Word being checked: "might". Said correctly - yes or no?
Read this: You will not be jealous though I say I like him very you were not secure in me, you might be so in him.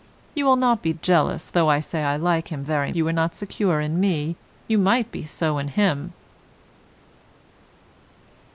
yes